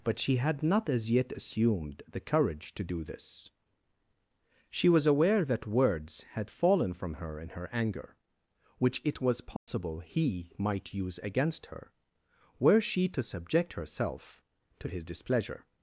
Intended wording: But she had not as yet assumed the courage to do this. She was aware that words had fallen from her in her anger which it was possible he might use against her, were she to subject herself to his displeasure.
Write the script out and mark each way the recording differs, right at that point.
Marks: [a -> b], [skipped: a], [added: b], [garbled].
But she had not as yet assumed the courage to do this. She was aware that words had fallen from her in her anger which it was possible he might use against her, were she to subject herself to his displeasure.